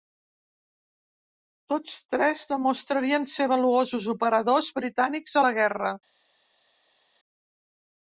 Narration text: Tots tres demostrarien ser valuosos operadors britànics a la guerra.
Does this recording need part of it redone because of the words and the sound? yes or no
no